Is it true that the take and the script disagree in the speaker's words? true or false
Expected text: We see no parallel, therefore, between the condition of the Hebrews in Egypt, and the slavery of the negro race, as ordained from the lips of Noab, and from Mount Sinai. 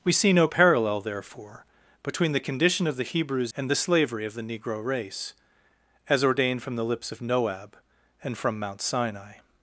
true